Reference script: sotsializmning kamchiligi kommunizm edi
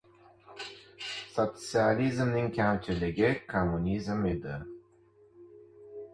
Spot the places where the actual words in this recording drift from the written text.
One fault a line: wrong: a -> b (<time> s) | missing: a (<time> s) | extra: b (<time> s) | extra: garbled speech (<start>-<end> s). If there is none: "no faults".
no faults